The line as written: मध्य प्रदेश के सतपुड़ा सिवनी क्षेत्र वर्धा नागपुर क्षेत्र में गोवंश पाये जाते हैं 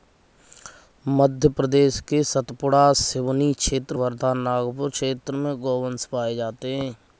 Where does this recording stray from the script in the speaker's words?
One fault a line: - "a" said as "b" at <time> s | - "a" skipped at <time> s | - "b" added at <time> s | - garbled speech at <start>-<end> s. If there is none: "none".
none